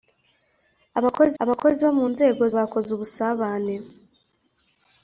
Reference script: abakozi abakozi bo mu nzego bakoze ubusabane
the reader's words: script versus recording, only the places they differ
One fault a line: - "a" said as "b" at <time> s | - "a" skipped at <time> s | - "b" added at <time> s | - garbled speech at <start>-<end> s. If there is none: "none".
none